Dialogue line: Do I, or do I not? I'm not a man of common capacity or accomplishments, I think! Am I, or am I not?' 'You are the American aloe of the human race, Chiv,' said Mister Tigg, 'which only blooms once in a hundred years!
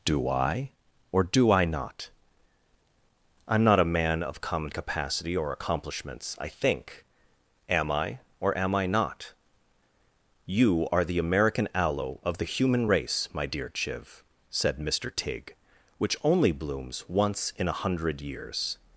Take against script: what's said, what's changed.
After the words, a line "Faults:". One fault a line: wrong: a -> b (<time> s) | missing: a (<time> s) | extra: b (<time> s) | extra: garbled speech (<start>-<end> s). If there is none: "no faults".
Do I, or do I not? I'm not a man of common capacity or accomplishments, I think! Am I, or am I not?' 'You are the American aloe of the human race, my dear Chiv,' said Mister Tigg, 'which only blooms once in a hundred years!
Faults:
extra: my dear (13.3 s)